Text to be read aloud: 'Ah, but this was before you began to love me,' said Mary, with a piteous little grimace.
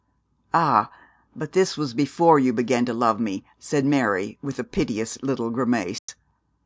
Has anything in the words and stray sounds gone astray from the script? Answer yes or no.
yes